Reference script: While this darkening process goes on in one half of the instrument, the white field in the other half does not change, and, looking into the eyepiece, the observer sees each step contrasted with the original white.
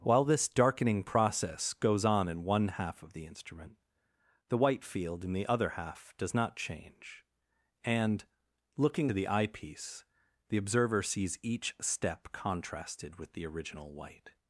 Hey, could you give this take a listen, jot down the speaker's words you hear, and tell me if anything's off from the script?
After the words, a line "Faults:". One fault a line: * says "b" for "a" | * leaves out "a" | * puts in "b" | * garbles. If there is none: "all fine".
While this darkening process goes on in one half of the instrument, the white field in the other half does not change, and, looking the eyepiece, the observer sees each step contrasted with the original white.
Faults:
* leaves out "into"